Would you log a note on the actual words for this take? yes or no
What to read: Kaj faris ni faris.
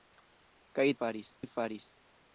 no